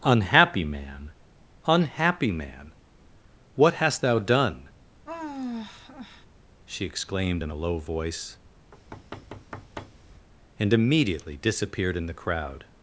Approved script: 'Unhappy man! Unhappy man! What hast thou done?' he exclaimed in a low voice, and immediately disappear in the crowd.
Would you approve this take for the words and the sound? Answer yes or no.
no